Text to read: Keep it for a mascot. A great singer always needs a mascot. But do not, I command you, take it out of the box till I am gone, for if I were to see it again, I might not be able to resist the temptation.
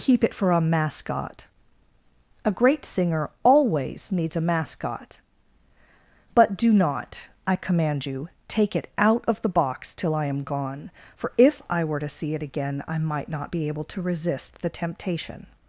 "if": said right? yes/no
yes